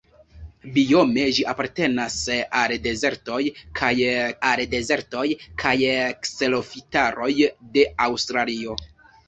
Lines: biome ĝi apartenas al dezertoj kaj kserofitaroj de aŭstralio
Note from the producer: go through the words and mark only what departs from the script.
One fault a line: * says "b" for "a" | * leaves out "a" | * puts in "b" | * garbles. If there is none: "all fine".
* puts in "al dezertoj kaj"